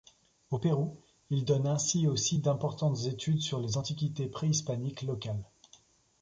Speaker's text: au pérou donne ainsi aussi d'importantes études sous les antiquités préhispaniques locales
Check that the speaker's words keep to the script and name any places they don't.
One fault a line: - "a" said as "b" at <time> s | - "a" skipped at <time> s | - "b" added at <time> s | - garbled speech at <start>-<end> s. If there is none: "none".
- "il" added at 1.3 s
- "sous" said as "sur" at 3.4 s